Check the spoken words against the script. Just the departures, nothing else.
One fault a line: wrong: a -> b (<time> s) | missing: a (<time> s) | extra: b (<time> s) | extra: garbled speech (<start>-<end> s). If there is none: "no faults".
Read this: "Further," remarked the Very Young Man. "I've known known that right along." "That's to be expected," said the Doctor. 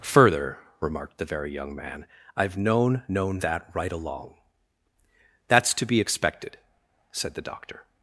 no faults